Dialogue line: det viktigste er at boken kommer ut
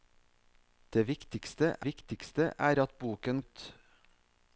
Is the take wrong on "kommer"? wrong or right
wrong